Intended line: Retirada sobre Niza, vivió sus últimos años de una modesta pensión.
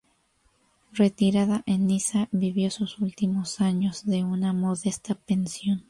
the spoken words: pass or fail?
fail